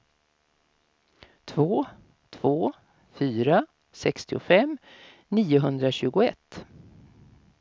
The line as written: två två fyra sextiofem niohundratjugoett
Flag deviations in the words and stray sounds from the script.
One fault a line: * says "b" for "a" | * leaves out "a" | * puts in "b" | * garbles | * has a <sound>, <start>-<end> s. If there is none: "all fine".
all fine